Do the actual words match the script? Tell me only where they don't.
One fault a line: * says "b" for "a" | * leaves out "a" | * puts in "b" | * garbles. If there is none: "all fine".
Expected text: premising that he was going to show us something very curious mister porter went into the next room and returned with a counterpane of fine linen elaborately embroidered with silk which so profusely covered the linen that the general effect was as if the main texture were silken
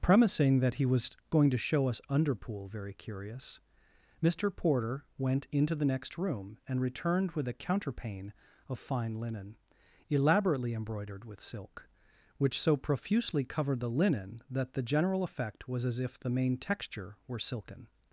* says "underpool" for "something"